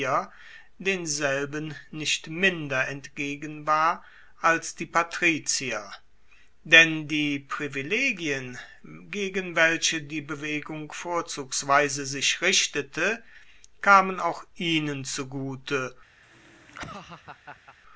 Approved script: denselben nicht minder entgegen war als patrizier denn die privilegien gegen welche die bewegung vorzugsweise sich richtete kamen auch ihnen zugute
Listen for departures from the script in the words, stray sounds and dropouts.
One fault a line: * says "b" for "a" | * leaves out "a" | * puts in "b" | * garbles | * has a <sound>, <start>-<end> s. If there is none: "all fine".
* puts in "die"
* has a laugh, 16.2-17.8 s